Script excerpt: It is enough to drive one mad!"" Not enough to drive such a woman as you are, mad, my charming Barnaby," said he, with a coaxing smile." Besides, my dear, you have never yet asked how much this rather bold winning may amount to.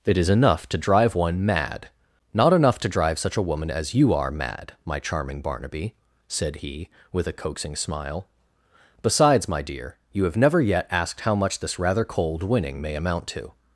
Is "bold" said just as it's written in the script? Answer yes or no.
no